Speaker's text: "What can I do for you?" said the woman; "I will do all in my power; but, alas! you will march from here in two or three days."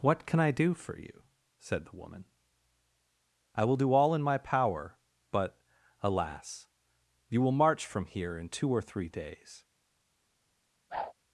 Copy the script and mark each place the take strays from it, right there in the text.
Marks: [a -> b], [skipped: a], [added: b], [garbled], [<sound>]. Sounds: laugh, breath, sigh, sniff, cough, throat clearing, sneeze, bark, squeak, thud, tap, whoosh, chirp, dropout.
"What can I do for you?" said the woman; "I will do all in my power; but, alas! you will march from here in two or three days." [whoosh]